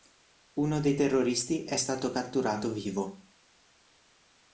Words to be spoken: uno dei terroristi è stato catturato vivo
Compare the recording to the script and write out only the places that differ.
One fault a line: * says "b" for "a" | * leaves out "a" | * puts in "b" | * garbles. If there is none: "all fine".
all fine